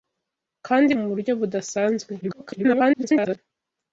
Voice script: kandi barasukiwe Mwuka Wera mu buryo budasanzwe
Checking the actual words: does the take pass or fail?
fail